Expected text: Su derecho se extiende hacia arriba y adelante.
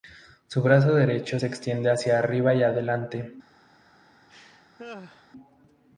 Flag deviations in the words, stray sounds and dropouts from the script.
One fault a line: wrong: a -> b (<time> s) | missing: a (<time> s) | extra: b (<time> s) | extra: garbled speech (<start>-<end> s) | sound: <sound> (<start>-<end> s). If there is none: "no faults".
extra: brazo (0.6 s)
sound: laugh (4.3-5.3 s)